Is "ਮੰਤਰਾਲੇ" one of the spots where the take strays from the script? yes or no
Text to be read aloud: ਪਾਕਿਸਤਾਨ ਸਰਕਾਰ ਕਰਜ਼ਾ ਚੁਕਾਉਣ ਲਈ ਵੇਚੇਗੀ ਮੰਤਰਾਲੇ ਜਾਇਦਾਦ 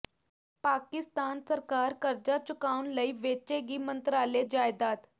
no